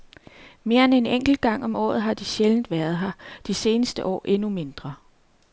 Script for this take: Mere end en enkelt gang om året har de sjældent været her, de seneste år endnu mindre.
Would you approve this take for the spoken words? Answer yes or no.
yes